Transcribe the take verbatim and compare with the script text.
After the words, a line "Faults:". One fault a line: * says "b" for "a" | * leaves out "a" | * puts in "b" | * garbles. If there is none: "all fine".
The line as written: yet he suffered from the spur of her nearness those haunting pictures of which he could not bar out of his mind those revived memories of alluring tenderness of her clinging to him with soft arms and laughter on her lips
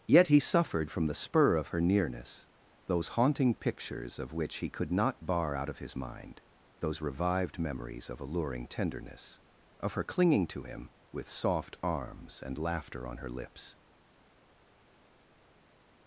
yet he suffered from the spur of her nearness those haunting pictures of which he could not bar out of his mind those revived memories of alluring tenderness of her clinging to him with soft arms and laughter on her lips
Faults:
all fine